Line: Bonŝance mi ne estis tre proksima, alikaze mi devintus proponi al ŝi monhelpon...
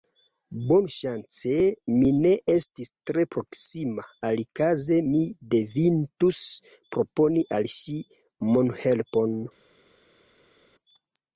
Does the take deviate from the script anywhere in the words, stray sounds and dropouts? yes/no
no